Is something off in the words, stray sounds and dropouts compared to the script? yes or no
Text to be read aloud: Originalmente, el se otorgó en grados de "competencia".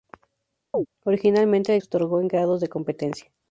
yes